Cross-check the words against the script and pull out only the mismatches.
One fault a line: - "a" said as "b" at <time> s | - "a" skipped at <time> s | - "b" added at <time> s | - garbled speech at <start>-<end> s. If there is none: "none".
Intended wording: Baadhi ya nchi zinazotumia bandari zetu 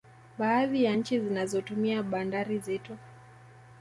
none